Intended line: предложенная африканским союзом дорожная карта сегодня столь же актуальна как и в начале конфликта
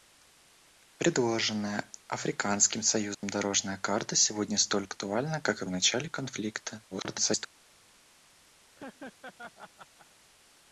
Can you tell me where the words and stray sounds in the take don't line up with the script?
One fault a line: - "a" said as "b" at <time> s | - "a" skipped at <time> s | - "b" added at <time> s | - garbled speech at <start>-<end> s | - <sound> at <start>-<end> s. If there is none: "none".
- dropout at 3.1-3.2 s
- "же" skipped at 4.9 s
- garbled speech at 6.9-7.5 s
- laugh at 8.8-10.1 s